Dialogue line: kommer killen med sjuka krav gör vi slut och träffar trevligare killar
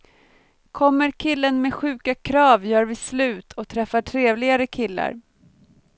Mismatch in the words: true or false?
false